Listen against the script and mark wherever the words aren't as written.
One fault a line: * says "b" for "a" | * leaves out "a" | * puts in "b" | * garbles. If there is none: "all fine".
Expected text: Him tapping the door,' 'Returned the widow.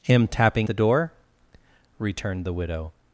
all fine